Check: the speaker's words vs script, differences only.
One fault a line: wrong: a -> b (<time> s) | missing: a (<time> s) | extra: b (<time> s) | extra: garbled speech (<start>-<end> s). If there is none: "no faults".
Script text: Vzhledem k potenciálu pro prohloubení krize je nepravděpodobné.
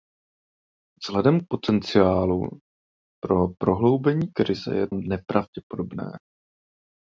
no faults